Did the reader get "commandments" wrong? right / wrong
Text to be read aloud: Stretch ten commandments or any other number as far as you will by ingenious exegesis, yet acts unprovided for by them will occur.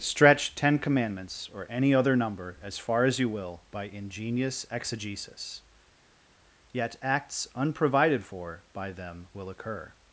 right